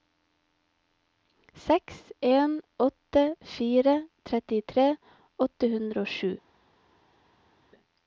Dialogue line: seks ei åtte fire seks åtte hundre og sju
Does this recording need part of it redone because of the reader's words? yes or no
yes